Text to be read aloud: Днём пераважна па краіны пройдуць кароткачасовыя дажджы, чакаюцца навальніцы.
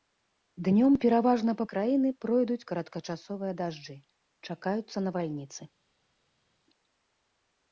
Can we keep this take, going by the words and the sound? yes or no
yes